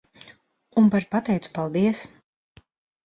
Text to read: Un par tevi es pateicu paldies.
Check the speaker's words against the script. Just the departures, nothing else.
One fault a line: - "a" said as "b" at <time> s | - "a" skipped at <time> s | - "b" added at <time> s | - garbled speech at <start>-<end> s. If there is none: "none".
- "tevi es" skipped at 1.1 s